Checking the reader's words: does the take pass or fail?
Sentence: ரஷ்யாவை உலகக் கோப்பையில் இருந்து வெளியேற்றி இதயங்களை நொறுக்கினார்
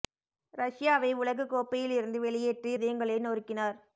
pass